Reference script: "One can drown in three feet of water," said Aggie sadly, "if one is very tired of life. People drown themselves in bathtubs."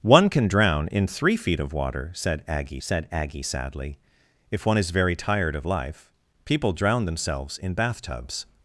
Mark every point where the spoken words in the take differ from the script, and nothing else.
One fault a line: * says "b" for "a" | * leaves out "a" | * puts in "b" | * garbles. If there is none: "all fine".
* puts in "said Aggie"